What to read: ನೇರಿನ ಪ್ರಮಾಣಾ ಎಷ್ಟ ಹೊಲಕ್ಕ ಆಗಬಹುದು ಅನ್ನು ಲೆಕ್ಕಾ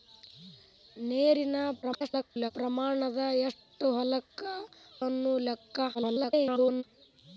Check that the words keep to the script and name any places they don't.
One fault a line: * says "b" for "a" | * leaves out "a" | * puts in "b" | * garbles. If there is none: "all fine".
* garbles
* leaves out "ಆಗಬಹುದು"
* garbles